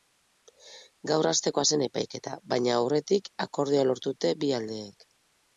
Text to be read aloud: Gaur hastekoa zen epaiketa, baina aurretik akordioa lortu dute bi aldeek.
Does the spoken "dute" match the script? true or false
true